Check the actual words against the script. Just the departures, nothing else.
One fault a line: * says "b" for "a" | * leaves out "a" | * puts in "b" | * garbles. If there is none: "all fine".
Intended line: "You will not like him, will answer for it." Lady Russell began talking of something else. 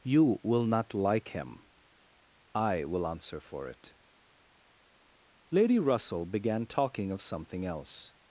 * puts in "I"